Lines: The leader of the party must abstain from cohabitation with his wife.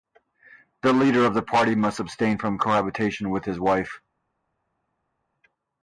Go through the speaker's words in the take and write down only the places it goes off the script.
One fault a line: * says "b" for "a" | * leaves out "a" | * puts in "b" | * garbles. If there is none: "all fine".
all fine